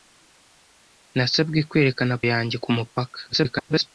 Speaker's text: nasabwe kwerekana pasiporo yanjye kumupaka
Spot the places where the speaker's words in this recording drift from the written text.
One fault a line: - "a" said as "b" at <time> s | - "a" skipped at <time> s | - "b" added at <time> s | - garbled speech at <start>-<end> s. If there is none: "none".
- "pasiporo" skipped at 2.1 s
- garbled speech at 3.3-3.9 s